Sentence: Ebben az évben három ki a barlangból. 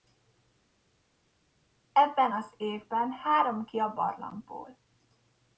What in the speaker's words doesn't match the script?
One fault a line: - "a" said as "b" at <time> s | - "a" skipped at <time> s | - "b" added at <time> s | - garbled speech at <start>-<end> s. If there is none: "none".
none